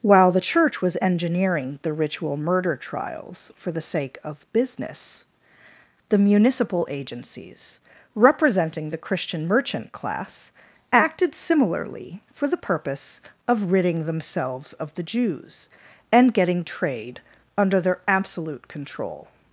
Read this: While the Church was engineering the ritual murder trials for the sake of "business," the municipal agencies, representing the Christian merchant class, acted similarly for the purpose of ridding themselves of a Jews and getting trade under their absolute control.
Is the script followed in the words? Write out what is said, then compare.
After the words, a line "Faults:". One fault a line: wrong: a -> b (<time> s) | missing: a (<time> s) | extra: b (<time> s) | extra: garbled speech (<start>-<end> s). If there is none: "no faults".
While the Church was engineering the ritual murder trials for the sake of "business," the municipal agencies, representing the Christian merchant class, acted similarly for the purpose of ridding themselves of the Jews and getting trade under their absolute control.
Faults:
wrong: a -> the (14.9 s)